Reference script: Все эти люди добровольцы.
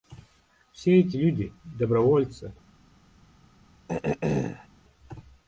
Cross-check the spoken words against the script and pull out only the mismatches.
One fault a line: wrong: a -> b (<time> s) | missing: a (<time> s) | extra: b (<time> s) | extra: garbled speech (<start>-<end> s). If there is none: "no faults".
no faults